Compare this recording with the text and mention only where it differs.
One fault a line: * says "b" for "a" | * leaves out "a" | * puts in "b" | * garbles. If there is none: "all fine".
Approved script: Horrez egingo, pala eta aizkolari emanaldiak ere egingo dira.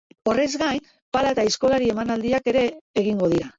* says "gain" for "egingo"